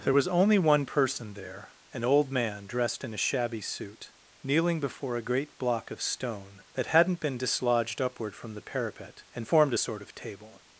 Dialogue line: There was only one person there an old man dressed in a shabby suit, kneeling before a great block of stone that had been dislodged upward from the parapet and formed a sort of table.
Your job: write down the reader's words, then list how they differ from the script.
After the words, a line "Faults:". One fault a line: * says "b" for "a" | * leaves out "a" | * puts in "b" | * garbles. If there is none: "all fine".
There was only one person there an old man dressed in a shabby suit, kneeling before a great block of stone that hadn't been dislodged upward from the parapet and formed a sort of table.
Faults:
* says "hadn't" for "had"